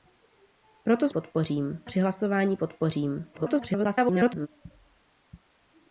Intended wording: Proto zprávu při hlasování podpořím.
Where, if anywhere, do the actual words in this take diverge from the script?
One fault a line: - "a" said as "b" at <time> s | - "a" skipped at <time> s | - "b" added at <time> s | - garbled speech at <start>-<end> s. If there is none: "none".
- "zprávu" said as "podpořím" at 1.1 s
- garbled speech at 3.3-4.5 s